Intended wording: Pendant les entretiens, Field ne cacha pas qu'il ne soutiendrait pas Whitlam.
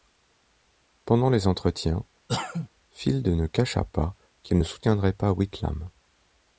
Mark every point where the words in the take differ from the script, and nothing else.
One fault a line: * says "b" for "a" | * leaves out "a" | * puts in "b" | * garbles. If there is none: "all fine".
all fine